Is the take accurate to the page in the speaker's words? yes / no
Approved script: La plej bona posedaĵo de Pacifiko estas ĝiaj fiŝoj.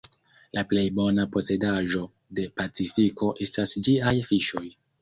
yes